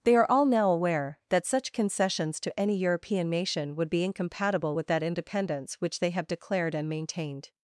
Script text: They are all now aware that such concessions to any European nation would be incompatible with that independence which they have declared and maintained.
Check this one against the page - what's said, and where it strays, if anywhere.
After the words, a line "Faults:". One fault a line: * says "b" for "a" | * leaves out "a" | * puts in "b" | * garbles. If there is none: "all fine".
They are all now aware that such concessions to any European nation would be incompatible with that independence which they have declared and maintained.
Faults:
all fine